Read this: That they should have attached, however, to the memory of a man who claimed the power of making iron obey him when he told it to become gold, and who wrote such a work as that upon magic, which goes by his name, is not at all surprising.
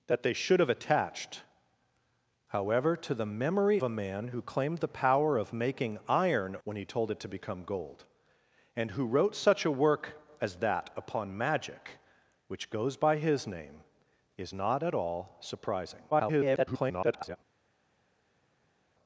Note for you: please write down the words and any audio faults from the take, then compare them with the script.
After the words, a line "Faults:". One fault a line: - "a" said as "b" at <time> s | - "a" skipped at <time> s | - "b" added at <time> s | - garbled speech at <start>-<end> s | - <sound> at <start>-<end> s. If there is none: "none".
That they should have attached, however, to the memory a man who claimed the power of making iron when he told it to become gold, and who wrote such a work as that upon magic, which goes by his name, is not at all surprising. [garbled]
Faults:
- "of" skipped at 3.8 s
- "obey him" skipped at 6.6 s
- garbled speech at 16.1-17.4 s